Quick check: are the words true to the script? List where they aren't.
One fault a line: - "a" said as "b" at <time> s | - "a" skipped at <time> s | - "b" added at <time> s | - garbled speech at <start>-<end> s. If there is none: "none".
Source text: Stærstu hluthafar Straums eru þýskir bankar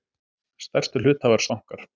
- "Straums eru þýskir" skipped at 1.4 s